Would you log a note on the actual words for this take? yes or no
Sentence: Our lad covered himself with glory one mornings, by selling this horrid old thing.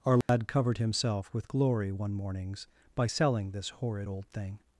no